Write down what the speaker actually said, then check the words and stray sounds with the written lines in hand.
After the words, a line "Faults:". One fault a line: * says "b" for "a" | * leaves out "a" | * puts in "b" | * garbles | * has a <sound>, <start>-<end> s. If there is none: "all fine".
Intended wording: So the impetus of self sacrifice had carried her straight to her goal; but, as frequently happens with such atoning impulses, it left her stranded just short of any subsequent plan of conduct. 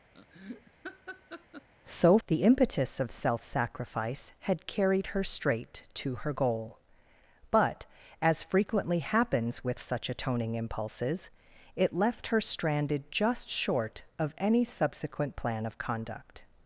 So the impetus of self sacrifice had carried her straight to her goal; but, as frequently happens with such atoning impulses, it left her stranded just short of any subsequent plan of conduct.
Faults:
* has a laugh, 0.1-1.7 s